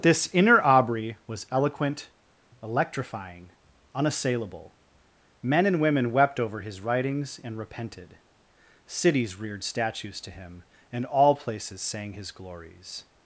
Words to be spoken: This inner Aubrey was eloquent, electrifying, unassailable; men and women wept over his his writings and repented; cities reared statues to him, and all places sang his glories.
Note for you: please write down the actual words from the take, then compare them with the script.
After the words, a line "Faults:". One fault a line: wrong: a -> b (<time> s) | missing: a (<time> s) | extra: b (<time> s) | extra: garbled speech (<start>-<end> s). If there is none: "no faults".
This inner Aubrey was eloquent, electrifying, unassailable; men and women wept over his writings and repented; cities reared statues to him, and all places sang his glories.
Faults:
missing: his (6.8 s)